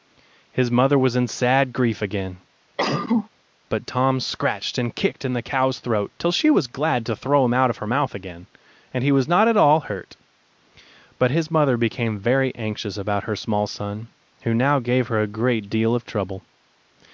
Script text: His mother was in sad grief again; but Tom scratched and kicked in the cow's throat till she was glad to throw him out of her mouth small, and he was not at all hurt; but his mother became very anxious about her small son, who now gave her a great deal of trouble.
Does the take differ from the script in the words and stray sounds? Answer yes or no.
yes